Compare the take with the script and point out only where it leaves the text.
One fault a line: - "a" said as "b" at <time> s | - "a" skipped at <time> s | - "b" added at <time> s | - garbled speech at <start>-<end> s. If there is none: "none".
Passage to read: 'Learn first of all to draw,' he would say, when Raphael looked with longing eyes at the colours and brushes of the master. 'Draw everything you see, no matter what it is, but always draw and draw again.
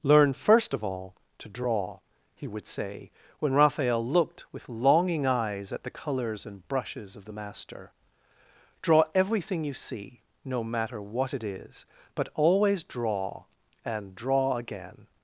none